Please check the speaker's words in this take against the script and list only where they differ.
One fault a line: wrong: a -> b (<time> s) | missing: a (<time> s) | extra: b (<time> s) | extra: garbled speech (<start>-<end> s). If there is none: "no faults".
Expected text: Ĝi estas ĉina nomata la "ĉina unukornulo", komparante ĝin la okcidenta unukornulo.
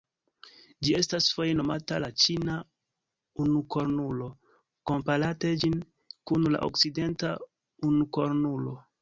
wrong: ĉina -> foje (1.4 s)
extra: kun (6.3 s)